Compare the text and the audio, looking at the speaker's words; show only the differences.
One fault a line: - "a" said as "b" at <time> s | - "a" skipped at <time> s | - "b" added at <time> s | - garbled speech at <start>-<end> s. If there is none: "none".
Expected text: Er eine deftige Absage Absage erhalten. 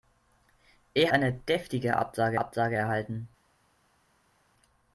none